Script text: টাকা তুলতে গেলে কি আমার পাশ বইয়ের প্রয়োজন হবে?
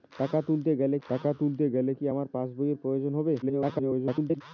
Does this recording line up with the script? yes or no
no